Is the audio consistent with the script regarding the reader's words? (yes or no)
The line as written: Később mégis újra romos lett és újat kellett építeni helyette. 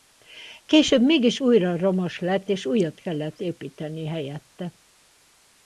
yes